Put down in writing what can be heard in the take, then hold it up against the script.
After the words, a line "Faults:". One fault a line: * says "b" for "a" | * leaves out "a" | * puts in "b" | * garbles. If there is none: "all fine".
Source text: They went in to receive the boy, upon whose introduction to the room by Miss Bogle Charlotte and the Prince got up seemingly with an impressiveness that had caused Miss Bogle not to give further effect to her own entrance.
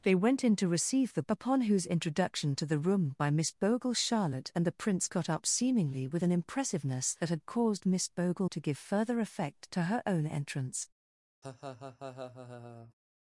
They went in to receive the upon whose introduction to the room by Miss Bogle Charlotte and the Prince got up seemingly with an impressiveness that had caused Miss Bogle to give further effect to her own entrance.
Faults:
* leaves out "boy"
* leaves out "not"